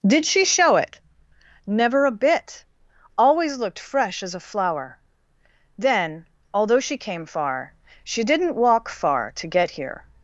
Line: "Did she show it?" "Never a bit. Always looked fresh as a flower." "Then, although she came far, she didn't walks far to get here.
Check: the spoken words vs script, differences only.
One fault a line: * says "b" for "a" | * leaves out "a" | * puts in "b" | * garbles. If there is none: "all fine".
* says "walk" for "walks"